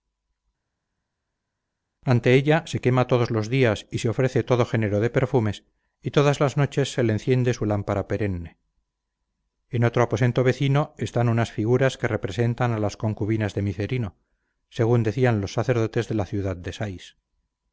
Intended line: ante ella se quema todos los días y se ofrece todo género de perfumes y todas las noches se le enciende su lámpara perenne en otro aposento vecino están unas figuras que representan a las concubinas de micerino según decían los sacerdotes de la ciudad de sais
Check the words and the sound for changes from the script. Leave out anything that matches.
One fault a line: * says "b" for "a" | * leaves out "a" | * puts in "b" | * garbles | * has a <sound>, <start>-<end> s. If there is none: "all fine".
all fine